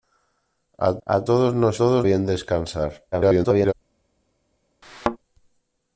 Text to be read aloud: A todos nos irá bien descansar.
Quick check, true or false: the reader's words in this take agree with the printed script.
false